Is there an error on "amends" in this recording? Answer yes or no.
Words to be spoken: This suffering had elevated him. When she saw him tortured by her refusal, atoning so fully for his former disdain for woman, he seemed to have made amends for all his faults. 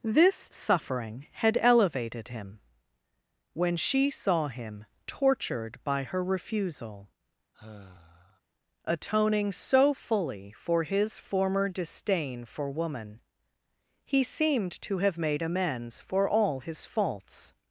no